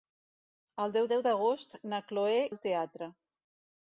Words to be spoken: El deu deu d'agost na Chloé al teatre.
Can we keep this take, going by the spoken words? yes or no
yes